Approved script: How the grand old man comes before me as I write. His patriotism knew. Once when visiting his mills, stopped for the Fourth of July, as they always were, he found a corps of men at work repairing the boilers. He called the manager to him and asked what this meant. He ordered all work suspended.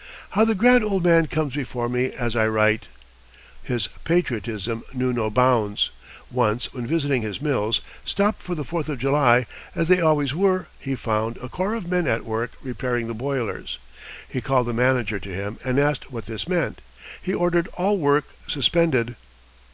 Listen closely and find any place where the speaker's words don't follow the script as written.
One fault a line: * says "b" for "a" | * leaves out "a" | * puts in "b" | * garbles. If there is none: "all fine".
* puts in "no bounds"